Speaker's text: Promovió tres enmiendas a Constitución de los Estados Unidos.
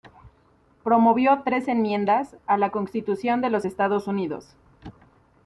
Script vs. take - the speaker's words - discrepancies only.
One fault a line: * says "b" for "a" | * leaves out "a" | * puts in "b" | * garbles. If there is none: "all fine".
* puts in "la"